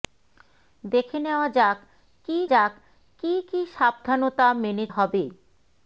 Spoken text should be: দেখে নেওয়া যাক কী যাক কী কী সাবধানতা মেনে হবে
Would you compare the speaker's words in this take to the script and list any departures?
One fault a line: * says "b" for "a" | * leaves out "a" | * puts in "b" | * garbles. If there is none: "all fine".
all fine